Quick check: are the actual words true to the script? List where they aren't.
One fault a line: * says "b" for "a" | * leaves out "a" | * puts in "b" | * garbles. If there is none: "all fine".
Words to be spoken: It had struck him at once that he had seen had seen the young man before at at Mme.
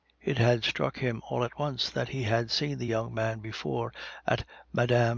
* puts in "all"
* leaves out "had seen"
* leaves out "at"